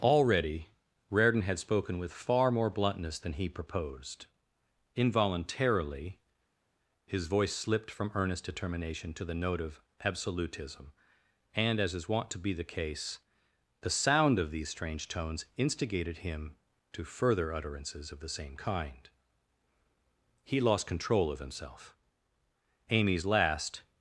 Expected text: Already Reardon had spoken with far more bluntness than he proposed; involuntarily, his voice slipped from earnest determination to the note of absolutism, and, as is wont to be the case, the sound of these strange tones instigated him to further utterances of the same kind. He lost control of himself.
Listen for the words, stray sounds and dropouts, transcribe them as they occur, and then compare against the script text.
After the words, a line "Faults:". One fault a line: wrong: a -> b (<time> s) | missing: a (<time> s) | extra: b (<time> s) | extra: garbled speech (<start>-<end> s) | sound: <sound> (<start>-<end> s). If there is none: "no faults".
Already Reardon had spoken with far more bluntness than he proposed; involuntarily, his voice slipped from earnest determination to the note of absolutism, and, as is wont to be the case, the sound of these strange tones instigated him to further utterances of the same kind. He lost control of himself. Amy's last
Faults:
extra: Amy's last (22.9 s)